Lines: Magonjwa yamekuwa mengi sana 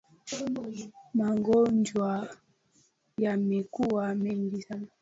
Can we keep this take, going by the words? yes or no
yes